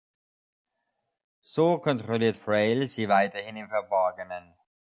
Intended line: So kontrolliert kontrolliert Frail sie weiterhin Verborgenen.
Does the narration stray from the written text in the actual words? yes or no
yes